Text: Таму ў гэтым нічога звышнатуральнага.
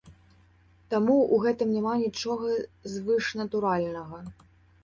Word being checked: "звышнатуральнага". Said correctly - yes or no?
yes